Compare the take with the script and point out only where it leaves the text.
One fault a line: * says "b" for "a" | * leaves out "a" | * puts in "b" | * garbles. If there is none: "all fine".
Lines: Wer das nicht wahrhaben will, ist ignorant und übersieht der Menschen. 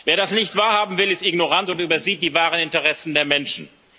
* puts in "die wahren Interessen"